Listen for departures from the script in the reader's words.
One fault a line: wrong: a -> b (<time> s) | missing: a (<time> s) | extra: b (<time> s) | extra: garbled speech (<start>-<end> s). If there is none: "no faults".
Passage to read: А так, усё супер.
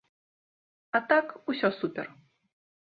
no faults